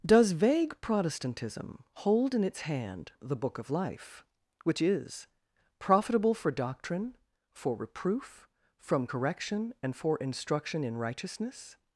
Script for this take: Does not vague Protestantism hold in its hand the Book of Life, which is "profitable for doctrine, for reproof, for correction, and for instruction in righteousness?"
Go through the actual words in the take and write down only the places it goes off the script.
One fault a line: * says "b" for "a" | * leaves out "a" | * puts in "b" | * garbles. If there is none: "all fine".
* leaves out "not"
* says "from" for "for"